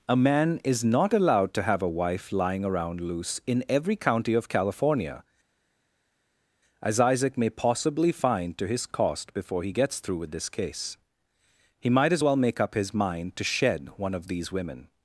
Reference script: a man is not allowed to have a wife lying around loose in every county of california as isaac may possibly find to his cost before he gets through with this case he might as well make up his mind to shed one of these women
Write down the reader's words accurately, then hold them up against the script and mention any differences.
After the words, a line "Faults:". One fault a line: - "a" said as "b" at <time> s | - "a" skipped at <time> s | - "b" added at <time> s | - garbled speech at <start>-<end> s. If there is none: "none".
a man is not allowed to have a wife lying around loose in every county of california as isaac may possibly find to his cost before he gets through with this case he might as well make up his mind to shed one of these women
Faults:
none